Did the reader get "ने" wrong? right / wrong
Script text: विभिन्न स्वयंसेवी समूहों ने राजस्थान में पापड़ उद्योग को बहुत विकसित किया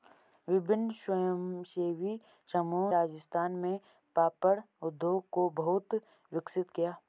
wrong